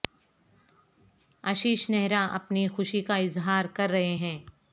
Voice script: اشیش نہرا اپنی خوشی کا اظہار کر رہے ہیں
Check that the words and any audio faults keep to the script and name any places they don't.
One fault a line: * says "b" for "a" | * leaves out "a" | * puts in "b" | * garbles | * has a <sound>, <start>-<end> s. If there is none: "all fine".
all fine